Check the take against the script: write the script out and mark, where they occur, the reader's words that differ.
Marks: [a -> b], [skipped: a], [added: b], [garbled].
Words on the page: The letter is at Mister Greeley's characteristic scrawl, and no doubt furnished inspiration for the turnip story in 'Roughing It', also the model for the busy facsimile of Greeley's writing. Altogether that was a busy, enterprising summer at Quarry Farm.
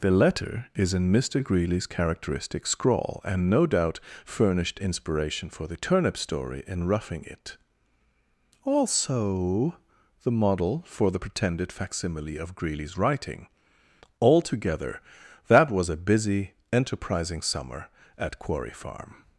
The letter is [at -> in] Mister Greeley's characteristic scrawl, and no doubt furnished inspiration for the turnip story in 'Roughing It', also the model for the [busy -> pretended] facsimile of Greeley's writing. Altogether that was a busy, enterprising summer at Quarry Farm.